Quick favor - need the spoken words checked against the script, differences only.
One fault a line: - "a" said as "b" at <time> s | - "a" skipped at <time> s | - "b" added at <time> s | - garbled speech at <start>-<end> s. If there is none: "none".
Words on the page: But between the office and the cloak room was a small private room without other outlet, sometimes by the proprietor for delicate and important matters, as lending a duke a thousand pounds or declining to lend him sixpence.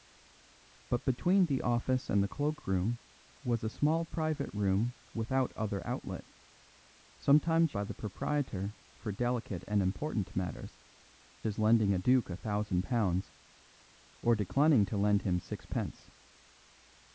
none